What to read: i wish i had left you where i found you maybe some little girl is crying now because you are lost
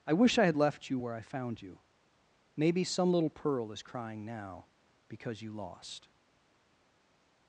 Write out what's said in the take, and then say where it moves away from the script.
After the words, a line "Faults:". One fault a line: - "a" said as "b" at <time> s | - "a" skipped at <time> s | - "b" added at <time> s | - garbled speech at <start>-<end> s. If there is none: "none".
i wish i had left you where i found you maybe some little pearl is crying now because you lost
Faults:
- "girl" said as "pearl" at 3.3 s
- "are" skipped at 5.5 s